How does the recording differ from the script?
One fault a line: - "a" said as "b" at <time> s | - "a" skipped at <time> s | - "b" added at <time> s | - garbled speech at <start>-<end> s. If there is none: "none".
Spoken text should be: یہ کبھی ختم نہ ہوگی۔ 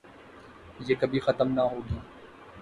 none